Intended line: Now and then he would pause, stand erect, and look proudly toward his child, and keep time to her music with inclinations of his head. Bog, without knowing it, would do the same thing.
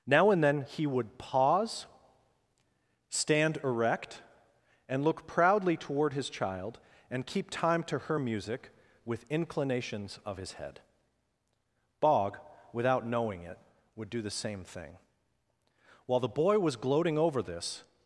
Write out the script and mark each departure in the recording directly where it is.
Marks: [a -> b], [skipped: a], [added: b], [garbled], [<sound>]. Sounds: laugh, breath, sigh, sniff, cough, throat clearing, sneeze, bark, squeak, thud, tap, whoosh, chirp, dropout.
Now and then he would pause, stand erect, and look proudly toward his child, and keep time to her music with inclinations of his head. Bog, without knowing it, would do the same thing. [added: While the boy was gloating over this]